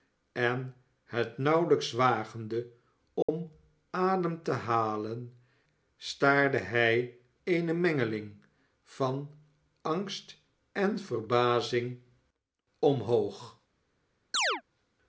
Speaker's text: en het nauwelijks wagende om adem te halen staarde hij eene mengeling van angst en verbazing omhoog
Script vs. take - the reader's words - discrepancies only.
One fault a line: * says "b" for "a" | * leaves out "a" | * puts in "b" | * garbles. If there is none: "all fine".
all fine